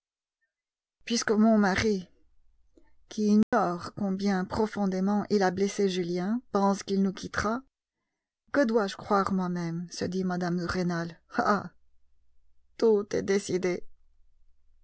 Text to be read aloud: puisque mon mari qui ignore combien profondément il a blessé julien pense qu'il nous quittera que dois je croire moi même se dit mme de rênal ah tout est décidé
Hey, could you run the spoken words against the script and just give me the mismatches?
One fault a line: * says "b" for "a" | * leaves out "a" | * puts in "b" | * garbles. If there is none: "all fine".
all fine